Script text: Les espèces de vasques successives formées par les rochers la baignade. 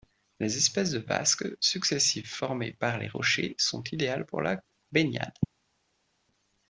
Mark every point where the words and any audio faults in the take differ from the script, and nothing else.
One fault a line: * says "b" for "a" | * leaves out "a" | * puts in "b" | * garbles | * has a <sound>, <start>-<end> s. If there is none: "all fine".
* puts in "sont idéales pour"